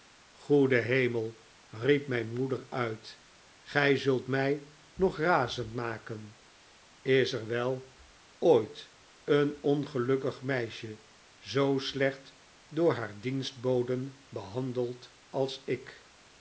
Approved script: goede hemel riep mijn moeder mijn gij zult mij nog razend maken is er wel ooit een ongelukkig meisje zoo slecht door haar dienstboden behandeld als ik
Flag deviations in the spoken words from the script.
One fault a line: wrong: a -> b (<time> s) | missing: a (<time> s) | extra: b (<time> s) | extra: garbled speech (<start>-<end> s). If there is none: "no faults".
wrong: mijn -> uit (2.7 s)